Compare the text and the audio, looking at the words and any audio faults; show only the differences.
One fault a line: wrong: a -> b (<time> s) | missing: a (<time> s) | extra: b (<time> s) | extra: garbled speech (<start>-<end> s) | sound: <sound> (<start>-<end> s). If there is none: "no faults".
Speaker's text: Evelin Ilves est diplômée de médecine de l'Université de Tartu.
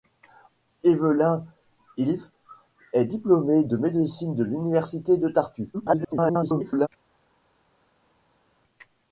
extra: garbled speech (5.7-6.9 s)